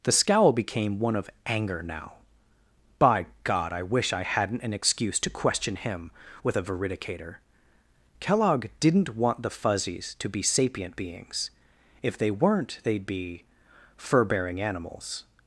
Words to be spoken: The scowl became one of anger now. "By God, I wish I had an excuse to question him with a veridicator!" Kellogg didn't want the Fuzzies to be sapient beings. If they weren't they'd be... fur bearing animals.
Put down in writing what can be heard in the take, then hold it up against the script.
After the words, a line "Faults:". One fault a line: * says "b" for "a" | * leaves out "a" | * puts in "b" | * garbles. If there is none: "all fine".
The scowl became one of anger now. "By God, I wish I hadn't an excuse to question him with a veridicator!" Kellogg didn't want the Fuzzies to be sapient beings. If they weren't they'd be... fur bearing animals.
Faults:
* says "hadn't" for "had"